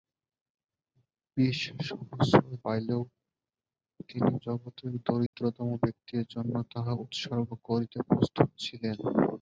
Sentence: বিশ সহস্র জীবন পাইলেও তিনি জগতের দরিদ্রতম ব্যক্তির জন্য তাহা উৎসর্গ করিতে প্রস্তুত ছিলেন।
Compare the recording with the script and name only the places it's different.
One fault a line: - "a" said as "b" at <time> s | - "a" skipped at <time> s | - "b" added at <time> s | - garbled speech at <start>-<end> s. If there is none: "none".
- "জীবন" skipped at 2.4 s